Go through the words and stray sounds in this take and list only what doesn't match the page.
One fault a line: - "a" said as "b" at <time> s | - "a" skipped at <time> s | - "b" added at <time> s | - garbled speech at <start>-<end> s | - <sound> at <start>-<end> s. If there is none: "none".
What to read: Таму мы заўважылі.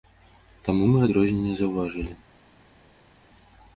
- "адрозненне" added at 1.1 s